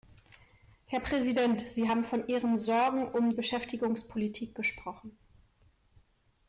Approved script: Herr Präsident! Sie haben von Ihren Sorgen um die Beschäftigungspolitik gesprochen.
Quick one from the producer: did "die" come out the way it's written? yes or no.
no